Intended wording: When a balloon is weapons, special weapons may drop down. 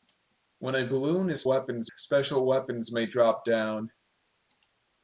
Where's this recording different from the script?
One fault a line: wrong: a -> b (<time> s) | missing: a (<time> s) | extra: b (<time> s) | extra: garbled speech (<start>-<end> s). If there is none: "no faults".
no faults